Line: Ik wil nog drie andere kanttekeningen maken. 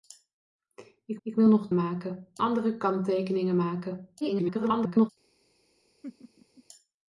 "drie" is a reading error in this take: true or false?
true